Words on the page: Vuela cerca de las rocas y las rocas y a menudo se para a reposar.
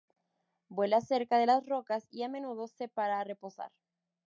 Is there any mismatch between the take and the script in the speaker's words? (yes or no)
yes